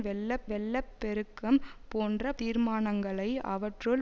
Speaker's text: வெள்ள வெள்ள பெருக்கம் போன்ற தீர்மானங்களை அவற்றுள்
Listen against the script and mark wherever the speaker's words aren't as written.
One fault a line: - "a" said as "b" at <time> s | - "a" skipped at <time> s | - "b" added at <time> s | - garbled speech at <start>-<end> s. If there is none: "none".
none